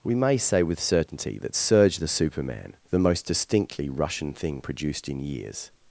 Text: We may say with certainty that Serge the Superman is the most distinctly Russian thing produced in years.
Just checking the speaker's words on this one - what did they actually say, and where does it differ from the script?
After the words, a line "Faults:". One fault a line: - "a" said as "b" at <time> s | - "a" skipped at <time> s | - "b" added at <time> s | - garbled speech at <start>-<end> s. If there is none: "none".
We may say with certainty that Serge the Superman the most distinctly Russian thing produced in years.
Faults:
- "is" skipped at 2.8 s